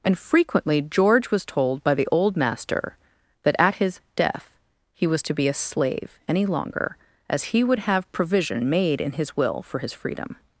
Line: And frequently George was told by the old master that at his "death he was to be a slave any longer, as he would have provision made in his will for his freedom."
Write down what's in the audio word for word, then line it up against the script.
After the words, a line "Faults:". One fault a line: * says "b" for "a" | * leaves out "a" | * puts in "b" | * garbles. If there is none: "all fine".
And frequently George was told by the old master that at his "death he was to be a slave any longer, as he would have provision made in his will for his freedom."
Faults:
all fine